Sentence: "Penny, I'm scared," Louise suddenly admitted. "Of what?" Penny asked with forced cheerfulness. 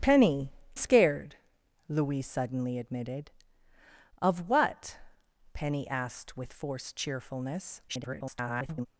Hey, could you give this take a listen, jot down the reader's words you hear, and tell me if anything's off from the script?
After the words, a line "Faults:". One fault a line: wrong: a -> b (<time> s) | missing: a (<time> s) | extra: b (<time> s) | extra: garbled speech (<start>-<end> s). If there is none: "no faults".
"Penny, Scared," Louise suddenly admitted. "Of what?" Penny asked with forced cheerfulness. [garbled]
Faults:
missing: I'm (0.5 s)
extra: garbled speech (7.9-8.9 s)